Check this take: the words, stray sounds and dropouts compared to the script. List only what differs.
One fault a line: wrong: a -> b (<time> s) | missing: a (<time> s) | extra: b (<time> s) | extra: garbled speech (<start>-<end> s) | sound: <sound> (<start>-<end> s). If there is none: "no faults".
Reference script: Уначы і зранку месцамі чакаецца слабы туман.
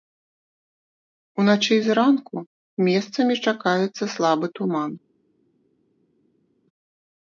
no faults